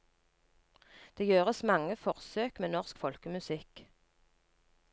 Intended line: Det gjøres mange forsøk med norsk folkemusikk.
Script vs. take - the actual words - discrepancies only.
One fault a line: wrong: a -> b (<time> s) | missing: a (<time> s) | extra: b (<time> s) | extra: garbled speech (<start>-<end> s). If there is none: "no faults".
no faults